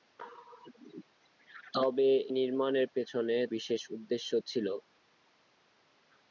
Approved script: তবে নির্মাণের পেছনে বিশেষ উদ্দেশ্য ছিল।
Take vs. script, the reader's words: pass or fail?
pass